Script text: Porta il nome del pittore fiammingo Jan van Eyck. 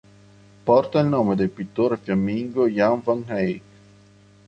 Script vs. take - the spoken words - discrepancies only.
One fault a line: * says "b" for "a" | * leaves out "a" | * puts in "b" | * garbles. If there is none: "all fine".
all fine